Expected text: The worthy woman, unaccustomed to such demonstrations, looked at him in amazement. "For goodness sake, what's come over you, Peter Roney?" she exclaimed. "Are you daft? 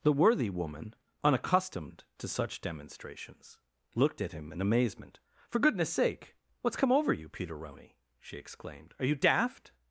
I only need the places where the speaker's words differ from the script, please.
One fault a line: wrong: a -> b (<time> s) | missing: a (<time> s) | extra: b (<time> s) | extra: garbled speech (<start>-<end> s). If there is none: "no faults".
no faults